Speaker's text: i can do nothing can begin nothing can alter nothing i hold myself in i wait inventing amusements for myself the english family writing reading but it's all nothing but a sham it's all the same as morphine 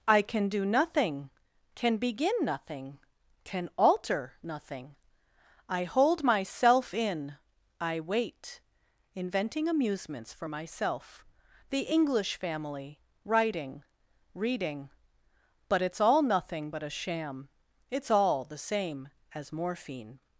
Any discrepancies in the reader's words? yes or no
no